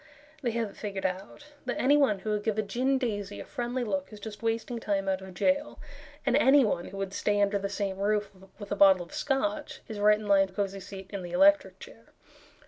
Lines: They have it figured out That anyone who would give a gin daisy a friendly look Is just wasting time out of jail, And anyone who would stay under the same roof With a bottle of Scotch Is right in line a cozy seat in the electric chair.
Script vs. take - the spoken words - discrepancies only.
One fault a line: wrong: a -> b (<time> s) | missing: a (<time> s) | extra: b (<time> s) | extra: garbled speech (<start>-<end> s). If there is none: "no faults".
no faults